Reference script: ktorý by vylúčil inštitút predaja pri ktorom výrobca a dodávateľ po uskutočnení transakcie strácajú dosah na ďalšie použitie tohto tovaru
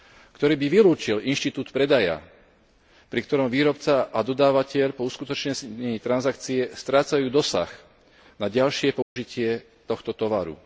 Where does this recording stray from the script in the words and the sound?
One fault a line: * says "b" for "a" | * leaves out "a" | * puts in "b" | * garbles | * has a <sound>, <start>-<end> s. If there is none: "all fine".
* has a dropout, 9.0-9.2 s